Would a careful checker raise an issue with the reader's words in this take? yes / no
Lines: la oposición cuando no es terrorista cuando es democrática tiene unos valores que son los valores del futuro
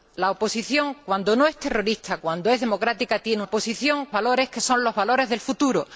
yes